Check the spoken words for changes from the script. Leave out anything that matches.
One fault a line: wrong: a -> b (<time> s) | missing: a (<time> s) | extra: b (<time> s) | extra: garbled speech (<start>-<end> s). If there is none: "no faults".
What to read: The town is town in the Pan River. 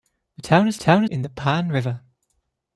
no faults